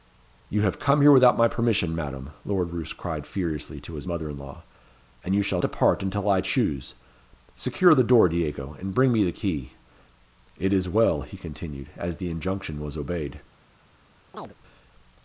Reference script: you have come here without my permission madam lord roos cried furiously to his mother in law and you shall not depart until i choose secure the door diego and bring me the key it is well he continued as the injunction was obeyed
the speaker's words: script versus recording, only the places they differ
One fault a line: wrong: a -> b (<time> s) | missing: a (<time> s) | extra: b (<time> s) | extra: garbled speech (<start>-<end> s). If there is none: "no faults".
missing: not (5.6 s)